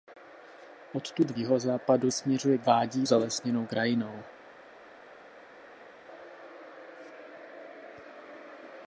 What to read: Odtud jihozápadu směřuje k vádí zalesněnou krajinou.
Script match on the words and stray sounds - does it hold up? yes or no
yes